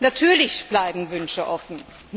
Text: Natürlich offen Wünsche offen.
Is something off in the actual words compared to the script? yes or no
yes